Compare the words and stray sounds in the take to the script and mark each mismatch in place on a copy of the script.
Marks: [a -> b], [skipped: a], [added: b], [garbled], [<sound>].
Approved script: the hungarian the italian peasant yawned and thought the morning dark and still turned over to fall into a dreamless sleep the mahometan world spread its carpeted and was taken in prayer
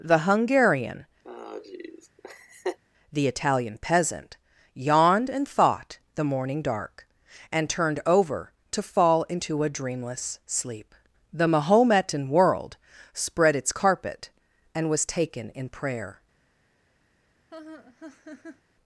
the hungarian [laugh] the italian peasant yawned and thought the morning dark and [skipped: still] turned over to fall into a dreamless sleep the mahometan world spread its [carpeted -> carpet] and was taken in prayer [laugh]